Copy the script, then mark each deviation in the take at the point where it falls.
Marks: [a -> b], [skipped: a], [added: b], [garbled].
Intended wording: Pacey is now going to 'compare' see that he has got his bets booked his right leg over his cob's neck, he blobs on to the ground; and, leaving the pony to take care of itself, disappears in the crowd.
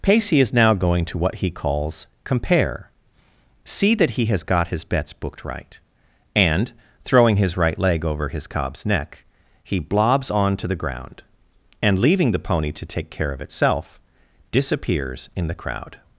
Pacey is now going to [added: what he calls] 'compare' see that he has got his bets booked [added: right and throwing] his right leg over his cob's neck, he blobs on to the ground; and, leaving the pony to take care of itself, disappears in the crowd.